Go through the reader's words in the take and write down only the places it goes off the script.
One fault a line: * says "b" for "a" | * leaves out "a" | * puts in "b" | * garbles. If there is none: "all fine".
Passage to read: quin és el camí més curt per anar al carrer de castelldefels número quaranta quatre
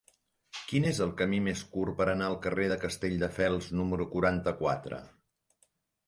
all fine